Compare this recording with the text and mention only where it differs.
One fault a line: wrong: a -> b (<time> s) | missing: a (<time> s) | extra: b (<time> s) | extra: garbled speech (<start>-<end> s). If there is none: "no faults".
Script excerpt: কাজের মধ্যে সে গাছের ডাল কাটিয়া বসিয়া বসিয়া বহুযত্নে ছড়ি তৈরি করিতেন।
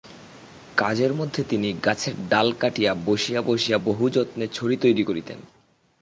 wrong: সে -> তিনি (1.4 s)